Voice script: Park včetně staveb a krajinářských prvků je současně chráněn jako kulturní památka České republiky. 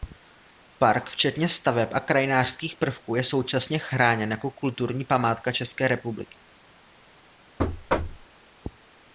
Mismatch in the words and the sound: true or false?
true